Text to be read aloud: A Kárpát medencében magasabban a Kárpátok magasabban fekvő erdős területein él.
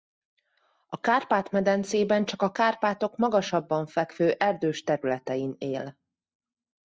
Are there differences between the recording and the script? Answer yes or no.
yes